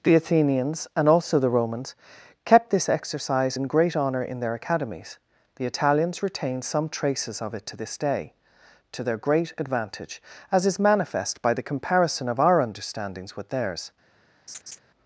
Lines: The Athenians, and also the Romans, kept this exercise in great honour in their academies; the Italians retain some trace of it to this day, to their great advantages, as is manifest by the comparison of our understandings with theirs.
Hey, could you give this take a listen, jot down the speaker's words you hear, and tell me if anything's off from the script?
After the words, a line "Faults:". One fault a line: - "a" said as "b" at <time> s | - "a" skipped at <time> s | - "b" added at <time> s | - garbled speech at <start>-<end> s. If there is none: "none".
The Athenians, and also the Romans, kept this exercise in great honour in their academies; the Italians retain some traces of it to this day, to their great advantage, as is manifest by the comparison of our understandings with theirs.
Faults:
- "trace" said as "traces" at 6.9 s
- "advantages" said as "advantage" at 9.6 s